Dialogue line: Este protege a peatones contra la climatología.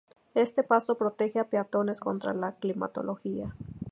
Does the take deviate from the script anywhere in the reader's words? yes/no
yes